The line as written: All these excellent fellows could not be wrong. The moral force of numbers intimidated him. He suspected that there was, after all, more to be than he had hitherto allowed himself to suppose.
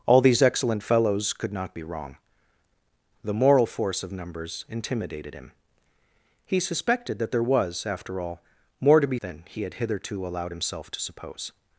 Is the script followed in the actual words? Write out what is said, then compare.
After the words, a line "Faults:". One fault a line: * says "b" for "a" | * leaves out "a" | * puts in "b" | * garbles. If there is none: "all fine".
All these excellent fellows could not be wrong. The moral force of numbers intimidated him. He suspected that there was, after all, more to be than he had hitherto allowed himself to suppose.
Faults:
all fine